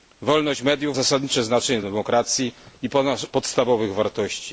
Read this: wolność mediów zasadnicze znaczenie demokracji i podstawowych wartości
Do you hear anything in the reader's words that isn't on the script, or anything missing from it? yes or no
no